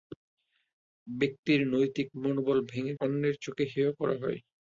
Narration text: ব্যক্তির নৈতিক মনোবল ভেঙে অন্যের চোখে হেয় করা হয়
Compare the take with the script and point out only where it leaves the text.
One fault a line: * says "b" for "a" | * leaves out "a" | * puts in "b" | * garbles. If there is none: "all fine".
all fine